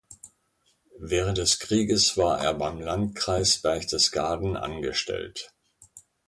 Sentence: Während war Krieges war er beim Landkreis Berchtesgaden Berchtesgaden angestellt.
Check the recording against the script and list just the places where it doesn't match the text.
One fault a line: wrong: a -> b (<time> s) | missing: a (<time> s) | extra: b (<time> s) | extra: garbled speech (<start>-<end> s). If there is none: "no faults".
wrong: war -> des (1.4 s)
missing: Berchtesgaden (4.6 s)